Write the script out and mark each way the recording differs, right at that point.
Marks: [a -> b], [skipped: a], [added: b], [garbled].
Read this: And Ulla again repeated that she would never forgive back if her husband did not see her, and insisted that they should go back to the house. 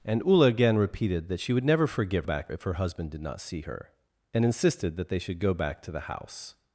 And Ulla again repeated that she would never forgive back if her husband did not see her, and insisted that they should go back to the house.